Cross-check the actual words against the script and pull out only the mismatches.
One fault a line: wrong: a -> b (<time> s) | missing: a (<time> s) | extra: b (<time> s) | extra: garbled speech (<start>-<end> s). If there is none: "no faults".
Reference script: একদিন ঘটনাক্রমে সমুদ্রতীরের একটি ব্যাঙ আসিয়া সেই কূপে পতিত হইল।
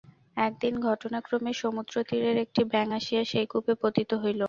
no faults